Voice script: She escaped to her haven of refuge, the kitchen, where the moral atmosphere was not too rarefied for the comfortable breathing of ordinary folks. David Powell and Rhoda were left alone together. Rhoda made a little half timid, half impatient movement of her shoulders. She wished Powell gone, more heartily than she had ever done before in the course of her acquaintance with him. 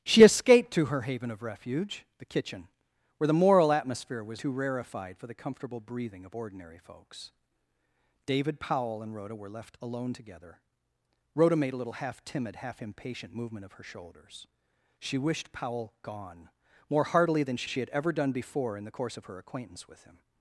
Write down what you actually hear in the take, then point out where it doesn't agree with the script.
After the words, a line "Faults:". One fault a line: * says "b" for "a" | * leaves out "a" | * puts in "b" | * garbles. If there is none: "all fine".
She escaped to her haven of refuge, the kitchen, where the moral atmosphere was too rarefied for the comfortable breathing of ordinary folks. David Powell and Rhoda were left alone together. Rhoda made a little half timid, half impatient movement of her shoulders. She wished Powell gone, more heartily than she she had ever done before in the course of her acquaintance with him.
Faults:
* leaves out "not"
* puts in "she"